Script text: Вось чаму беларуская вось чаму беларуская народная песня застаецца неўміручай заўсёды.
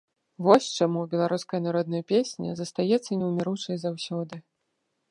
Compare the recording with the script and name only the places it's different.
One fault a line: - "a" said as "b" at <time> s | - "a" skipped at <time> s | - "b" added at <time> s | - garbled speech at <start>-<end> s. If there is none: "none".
- "вось чаму беларуская" skipped at 1.6 s